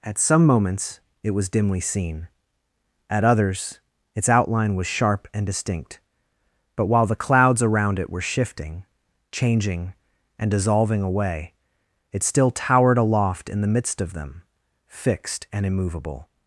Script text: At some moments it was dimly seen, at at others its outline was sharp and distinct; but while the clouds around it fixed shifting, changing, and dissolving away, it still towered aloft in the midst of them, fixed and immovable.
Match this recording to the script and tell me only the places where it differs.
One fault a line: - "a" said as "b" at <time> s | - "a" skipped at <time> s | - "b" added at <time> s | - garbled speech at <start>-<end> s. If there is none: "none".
- "at" skipped at 3.3 s
- "fixed" said as "were" at 8.1 s